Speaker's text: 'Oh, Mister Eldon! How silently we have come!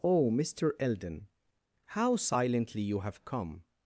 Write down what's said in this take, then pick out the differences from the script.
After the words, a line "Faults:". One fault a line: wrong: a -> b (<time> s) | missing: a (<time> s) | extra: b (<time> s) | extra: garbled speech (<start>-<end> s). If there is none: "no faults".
'Oh, Mister Eldon! How silently you have come!
Faults:
wrong: we -> you (2.8 s)